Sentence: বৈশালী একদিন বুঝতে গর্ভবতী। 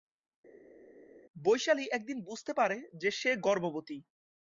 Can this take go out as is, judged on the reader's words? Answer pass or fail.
fail